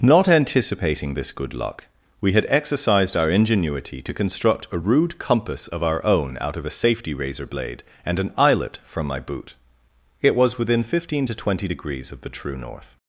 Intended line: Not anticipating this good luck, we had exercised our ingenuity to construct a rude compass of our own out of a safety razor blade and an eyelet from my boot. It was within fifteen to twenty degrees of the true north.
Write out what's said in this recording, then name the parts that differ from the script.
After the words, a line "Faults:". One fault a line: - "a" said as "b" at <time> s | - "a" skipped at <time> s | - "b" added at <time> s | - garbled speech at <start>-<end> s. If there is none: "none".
Not anticipating this good luck, we had exercised our ingenuity to construct a rude compass of our own out of a safety razor blade and an eyelet from my boot. It was within fifteen to twenty degrees of the true north.
Faults:
none